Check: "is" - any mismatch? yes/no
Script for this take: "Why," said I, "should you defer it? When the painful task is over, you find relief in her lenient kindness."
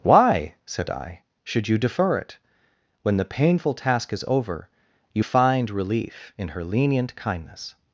no